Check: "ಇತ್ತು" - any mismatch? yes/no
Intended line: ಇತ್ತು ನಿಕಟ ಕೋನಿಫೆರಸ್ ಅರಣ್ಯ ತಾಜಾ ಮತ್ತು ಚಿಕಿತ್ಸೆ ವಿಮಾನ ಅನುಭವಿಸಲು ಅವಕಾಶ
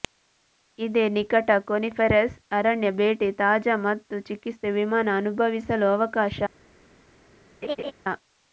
yes